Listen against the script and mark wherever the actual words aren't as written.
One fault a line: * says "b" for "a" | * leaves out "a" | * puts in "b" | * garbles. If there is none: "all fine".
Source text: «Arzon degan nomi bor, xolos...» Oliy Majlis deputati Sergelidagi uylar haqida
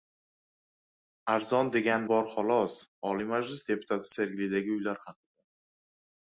* leaves out "nomi"